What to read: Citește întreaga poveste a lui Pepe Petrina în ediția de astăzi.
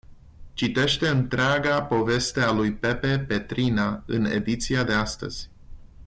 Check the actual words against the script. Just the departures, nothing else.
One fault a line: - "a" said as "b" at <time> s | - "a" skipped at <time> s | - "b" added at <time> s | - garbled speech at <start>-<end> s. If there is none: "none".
none